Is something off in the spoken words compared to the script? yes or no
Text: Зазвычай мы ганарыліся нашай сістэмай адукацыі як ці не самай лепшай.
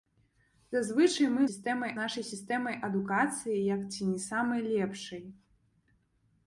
yes